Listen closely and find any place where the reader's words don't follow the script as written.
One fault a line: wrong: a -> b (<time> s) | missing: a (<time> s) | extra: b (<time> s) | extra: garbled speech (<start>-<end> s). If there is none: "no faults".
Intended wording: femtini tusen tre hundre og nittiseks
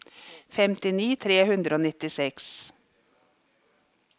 missing: tusen (1.1 s)